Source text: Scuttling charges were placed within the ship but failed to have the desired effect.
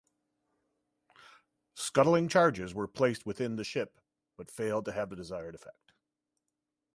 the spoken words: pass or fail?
pass